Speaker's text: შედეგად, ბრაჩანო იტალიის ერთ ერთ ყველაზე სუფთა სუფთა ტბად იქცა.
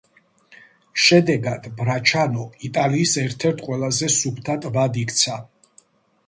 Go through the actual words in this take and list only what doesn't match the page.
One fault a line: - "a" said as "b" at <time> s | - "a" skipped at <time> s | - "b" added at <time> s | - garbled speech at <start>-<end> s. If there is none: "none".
- "სუფთა" skipped at 4.6 s